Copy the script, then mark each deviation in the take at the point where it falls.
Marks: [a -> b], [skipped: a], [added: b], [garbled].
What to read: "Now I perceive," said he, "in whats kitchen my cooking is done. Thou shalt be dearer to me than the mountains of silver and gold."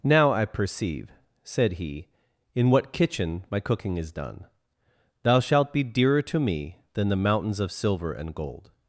"Now I perceive," said he, "in [whats -> what] kitchen my cooking is done. Thou shalt be dearer to me than the mountains of silver and gold."